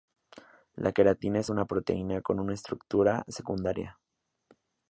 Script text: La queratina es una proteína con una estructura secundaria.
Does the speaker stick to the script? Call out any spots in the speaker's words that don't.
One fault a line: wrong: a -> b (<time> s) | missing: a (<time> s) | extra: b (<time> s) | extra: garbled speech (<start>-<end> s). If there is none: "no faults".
no faults